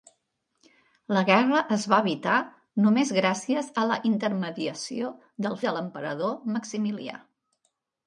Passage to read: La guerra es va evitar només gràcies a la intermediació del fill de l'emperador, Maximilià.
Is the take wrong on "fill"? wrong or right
wrong